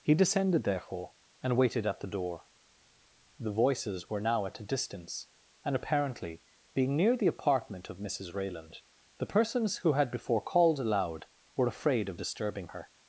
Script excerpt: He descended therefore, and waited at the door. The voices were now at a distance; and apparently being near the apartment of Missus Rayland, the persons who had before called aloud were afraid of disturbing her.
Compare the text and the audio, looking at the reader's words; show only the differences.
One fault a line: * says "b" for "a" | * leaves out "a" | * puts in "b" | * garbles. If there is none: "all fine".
all fine